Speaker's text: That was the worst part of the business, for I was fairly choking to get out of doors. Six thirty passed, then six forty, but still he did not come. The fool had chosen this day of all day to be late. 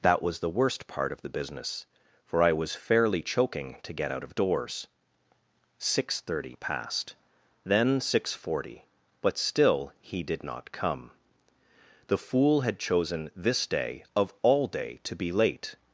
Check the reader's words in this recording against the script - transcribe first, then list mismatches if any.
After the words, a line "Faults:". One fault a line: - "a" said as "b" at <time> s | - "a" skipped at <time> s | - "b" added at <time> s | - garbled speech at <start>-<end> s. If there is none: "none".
That was the worst part of the business, for I was fairly choking to get out of doors. Six thirty passed, then six forty, but still he did not come. The fool had chosen this day of all day to be late.
Faults:
none